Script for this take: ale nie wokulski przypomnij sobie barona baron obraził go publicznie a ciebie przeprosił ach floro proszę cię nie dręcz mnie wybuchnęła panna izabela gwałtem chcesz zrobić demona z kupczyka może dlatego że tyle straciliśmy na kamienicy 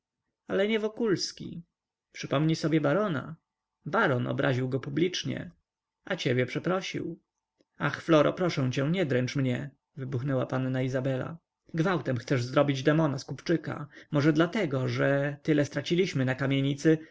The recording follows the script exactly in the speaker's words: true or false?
true